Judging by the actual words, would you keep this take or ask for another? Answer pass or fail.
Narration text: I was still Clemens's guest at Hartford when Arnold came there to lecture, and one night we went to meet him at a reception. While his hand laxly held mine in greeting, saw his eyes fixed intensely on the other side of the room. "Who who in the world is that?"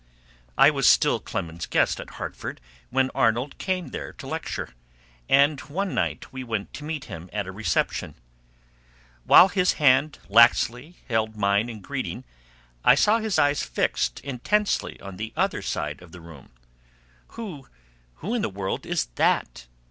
fail